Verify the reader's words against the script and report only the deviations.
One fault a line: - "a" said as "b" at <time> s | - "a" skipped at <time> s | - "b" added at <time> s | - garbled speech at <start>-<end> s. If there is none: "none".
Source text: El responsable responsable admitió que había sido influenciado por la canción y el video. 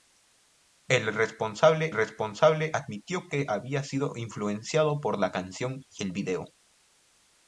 none